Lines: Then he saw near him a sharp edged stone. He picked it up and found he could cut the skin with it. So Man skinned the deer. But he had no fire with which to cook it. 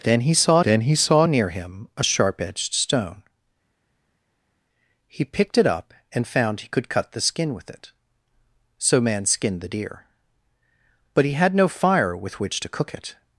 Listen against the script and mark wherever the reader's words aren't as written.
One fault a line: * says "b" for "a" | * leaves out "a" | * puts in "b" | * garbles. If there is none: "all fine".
* puts in "then he saw"